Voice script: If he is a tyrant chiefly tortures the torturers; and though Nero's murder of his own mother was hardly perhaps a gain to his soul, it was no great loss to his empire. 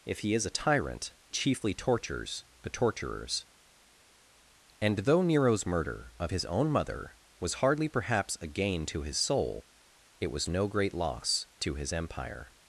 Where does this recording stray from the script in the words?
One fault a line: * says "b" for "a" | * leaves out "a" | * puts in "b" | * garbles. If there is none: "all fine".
all fine